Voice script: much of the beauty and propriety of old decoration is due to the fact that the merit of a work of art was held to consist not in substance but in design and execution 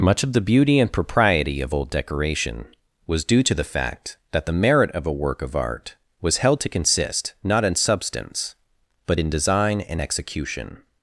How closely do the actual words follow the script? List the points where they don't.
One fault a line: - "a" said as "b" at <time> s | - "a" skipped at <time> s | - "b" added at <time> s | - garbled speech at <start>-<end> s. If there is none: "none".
- "is" said as "was" at 3.1 s